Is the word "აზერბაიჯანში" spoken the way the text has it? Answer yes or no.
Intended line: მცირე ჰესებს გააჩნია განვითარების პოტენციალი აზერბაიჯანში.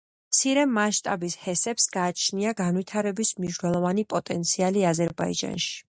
yes